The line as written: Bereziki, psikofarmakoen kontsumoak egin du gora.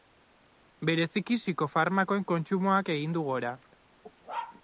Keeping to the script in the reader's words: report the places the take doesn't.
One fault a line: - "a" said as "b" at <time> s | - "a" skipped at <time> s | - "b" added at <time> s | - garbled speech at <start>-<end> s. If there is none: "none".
none